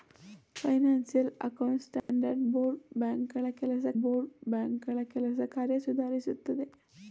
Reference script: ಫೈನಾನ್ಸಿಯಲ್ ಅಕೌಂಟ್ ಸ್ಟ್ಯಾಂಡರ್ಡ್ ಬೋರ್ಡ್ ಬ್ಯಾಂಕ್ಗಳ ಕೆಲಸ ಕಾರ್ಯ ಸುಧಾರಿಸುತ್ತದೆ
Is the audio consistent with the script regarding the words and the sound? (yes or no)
no